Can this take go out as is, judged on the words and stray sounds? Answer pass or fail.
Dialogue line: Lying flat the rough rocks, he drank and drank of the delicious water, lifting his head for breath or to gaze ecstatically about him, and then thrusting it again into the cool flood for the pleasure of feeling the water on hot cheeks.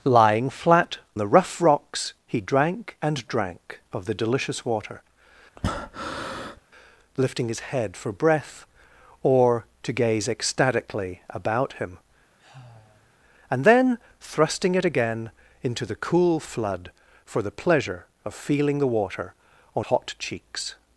fail